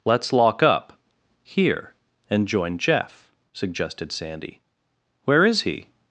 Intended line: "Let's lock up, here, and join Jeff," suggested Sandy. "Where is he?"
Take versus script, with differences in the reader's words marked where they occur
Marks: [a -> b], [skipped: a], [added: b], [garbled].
"Let's lock up, here, and join Jeff," suggested Sandy. "Where is he?"